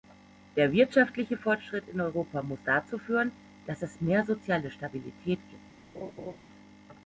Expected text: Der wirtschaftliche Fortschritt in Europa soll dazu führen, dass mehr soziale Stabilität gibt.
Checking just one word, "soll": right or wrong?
wrong